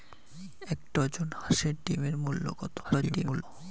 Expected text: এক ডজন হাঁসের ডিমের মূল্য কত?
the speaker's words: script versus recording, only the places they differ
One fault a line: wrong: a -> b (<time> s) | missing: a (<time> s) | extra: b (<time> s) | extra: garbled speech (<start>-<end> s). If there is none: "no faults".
extra: garbled speech (2.8-3.4 s)